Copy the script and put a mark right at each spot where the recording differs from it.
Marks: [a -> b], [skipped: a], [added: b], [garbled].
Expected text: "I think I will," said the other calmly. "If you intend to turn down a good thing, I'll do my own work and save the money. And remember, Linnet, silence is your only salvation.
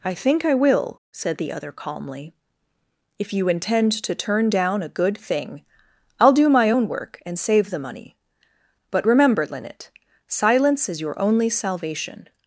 "I think I will," said the other calmly. "If you intend to turn down a good thing, I'll do my own work and save the money. [And -> But] remember, Linnet, silence is your only salvation.